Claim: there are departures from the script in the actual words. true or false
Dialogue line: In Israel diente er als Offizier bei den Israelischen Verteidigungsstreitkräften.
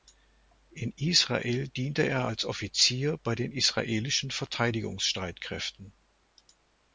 false